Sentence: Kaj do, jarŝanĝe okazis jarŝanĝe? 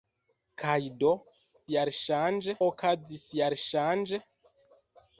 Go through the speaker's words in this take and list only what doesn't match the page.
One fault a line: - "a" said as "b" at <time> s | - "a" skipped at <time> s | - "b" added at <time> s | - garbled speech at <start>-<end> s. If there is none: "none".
none